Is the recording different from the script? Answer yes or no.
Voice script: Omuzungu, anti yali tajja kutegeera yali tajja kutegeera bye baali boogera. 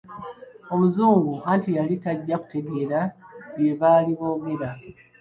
yes